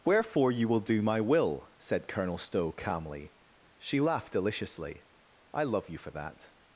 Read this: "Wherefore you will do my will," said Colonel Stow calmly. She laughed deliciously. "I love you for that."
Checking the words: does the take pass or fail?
pass